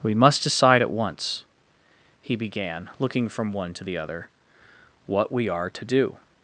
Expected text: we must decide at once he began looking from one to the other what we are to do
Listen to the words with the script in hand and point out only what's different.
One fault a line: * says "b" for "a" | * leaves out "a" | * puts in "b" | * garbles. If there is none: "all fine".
all fine